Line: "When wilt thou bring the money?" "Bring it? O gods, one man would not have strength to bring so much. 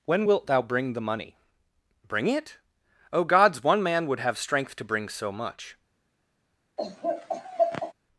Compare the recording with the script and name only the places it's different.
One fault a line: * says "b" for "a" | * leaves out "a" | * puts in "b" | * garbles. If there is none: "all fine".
* leaves out "not"